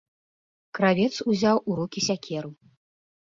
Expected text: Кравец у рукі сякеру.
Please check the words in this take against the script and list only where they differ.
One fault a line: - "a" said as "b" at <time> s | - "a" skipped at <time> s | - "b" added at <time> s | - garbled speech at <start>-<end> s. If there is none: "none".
- "узяў" added at 1.3 s